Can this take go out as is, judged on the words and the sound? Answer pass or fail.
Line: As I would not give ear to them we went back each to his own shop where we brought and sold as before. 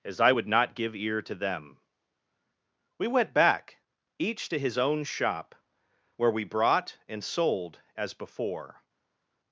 pass